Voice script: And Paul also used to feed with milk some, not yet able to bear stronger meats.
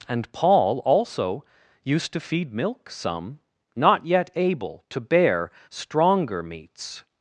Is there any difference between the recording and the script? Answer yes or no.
yes